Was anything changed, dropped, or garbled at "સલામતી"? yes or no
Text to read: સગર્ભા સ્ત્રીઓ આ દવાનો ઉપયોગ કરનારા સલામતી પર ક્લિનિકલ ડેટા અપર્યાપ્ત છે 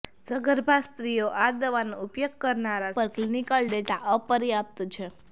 yes